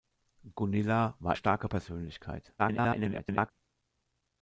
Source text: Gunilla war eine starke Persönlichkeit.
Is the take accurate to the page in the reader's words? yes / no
no